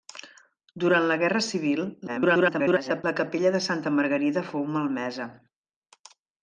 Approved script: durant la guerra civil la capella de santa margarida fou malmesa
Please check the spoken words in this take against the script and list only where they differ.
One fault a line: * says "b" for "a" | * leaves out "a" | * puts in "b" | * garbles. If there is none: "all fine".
* garbles